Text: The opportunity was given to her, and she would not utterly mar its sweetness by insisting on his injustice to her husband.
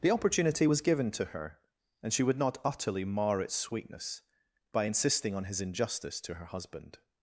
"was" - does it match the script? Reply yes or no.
yes